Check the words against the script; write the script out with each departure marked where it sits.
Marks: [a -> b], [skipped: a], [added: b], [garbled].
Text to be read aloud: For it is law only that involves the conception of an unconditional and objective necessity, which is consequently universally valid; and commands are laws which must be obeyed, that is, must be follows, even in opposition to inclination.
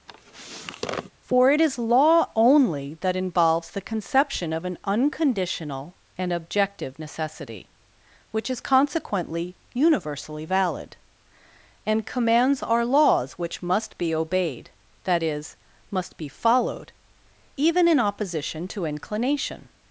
For it is law only that involves the conception of an unconditional and objective necessity, which is consequently universally valid; and commands are laws which must be obeyed, that is, must be [follows, -> followed] even in opposition to inclination.